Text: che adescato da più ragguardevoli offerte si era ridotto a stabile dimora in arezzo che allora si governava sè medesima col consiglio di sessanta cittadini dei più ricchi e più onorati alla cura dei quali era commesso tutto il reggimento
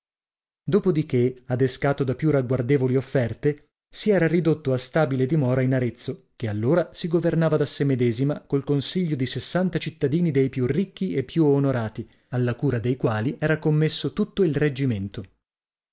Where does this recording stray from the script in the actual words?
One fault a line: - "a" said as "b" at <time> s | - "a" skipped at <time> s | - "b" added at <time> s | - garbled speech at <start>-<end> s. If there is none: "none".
- "da" added at 7.5 s